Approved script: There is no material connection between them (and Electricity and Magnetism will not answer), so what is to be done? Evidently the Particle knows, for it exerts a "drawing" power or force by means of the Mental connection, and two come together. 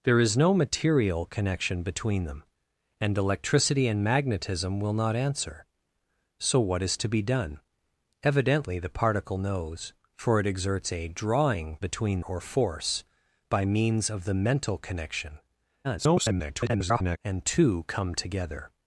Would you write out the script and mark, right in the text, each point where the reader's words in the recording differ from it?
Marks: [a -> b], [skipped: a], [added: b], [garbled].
There is no material connection between them (and Electricity and Magnetism will not answer), so what is to be done? Evidently the Particle knows, for it exerts a "drawing" [power -> between] or force by means of the Mental connection, [garbled] and two come together.